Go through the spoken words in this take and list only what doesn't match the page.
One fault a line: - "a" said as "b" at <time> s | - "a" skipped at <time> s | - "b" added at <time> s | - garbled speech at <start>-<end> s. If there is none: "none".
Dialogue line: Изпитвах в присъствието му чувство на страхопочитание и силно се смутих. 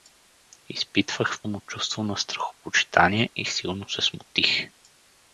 - "присъствието" skipped at 1.4 s